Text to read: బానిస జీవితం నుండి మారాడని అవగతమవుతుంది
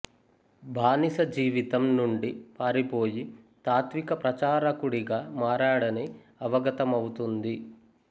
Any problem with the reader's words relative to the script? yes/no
yes